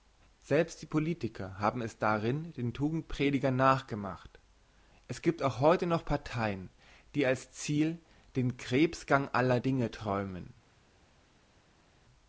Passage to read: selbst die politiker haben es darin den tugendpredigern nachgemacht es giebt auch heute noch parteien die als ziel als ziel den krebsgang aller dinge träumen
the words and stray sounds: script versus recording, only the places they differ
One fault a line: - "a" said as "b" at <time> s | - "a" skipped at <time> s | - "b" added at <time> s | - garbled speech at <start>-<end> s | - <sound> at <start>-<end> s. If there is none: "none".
- "als ziel" skipped at 8.0 s